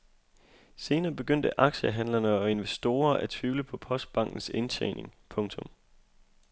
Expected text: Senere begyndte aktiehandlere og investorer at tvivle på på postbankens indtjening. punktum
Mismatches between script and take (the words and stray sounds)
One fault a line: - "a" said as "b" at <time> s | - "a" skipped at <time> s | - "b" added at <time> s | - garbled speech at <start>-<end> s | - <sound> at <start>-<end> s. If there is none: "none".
- "på" skipped at 3.8 s